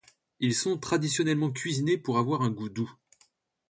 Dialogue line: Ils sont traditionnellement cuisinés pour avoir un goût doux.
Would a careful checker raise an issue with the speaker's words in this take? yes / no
no